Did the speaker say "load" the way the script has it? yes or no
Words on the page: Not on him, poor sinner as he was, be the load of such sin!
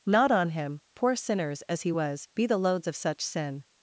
no